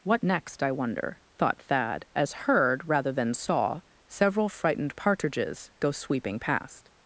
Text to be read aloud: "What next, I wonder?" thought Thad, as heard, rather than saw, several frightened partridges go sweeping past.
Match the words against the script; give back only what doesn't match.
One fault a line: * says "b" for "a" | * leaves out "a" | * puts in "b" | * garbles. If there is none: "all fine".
all fine